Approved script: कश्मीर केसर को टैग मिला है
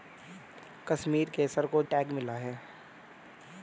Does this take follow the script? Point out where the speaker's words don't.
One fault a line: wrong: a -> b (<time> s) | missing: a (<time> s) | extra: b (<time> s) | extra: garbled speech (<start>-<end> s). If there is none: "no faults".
no faults